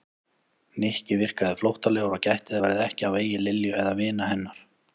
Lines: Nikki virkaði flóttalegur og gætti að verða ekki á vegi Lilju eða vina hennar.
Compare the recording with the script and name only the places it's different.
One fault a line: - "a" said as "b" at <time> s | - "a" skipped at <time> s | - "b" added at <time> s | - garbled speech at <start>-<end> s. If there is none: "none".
none